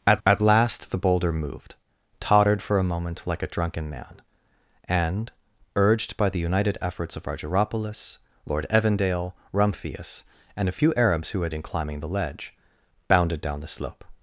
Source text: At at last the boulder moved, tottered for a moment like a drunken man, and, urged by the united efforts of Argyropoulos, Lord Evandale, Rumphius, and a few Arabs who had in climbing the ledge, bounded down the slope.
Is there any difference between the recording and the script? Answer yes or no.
no